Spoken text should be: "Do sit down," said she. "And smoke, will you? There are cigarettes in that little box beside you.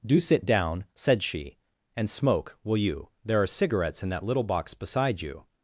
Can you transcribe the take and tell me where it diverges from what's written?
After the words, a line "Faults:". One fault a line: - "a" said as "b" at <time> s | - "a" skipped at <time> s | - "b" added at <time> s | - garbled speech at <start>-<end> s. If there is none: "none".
"Do sit down," said she. "And smoke, will you? There are cigarettes in that little box beside you.
Faults:
none